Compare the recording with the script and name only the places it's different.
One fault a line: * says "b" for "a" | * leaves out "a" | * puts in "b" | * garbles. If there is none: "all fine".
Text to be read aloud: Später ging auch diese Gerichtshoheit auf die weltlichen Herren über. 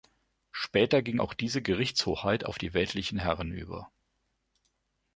all fine